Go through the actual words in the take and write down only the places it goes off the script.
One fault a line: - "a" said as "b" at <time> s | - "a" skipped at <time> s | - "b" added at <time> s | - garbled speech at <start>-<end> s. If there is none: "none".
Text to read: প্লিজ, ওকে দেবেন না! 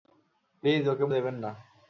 none